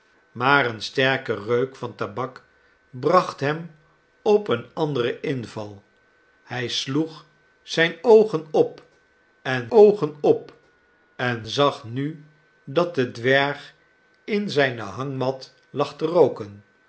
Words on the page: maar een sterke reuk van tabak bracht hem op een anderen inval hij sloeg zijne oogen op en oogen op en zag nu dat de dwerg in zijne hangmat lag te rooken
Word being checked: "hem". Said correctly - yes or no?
yes